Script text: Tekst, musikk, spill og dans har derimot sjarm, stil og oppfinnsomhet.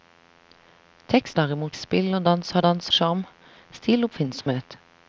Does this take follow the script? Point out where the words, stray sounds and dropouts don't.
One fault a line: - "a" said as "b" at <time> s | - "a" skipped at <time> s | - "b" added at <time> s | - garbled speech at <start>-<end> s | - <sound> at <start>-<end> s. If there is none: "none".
- "musikk" said as "derimot" at 1.3 s
- "derimot" said as "dans" at 2.6 s
- dropout at 4.4-4.5 s